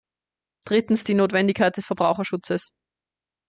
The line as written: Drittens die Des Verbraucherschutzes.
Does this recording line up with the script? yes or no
no